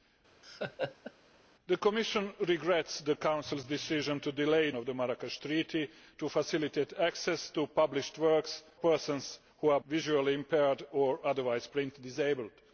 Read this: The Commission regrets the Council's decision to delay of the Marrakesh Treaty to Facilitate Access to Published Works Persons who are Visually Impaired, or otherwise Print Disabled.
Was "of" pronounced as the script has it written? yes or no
yes